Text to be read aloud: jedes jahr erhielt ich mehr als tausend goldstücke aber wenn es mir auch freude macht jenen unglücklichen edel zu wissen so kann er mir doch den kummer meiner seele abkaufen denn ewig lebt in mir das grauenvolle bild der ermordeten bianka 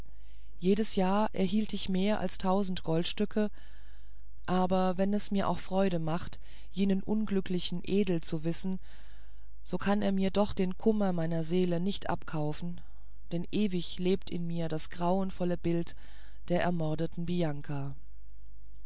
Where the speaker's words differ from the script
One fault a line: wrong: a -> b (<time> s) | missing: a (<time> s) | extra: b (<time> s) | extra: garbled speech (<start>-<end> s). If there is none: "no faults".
extra: nicht (11.8 s)